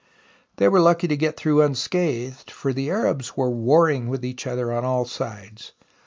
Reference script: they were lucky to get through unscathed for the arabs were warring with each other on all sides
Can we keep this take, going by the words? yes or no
yes